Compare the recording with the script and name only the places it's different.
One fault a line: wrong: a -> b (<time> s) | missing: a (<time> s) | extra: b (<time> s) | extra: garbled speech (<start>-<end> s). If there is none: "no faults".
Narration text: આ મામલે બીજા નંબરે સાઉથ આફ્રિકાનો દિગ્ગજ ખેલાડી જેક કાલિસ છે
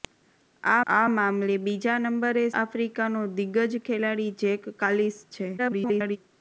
extra: આ (0.9 s)
missing: સાઉથ (2.4 s)
extra: garbled speech (5.6-6.2 s)